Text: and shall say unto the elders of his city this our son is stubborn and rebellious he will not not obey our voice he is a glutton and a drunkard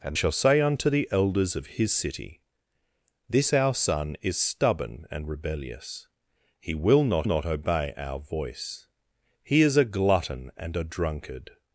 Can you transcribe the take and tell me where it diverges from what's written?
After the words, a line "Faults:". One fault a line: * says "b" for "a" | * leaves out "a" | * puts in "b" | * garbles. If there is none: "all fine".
and shall say unto the elders of his city this our son is stubborn and rebellious he will not not obey our voice he is a glutton and a drunkard
Faults:
all fine